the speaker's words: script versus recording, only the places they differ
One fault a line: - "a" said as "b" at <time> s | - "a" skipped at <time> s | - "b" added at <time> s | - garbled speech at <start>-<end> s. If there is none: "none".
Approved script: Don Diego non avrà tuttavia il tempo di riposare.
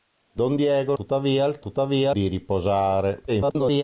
- "non avrà" skipped at 0.9 s
- "tempo" said as "tuttavia" at 1.6 s
- garbled speech at 3.3-3.8 s